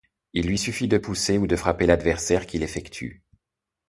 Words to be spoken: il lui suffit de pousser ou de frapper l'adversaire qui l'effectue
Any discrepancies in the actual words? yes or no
no